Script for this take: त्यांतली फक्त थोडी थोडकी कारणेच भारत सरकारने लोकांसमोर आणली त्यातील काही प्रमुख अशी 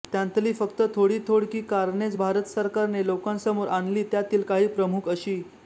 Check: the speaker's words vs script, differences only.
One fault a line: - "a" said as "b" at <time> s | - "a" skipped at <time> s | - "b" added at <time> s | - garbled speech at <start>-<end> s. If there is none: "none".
none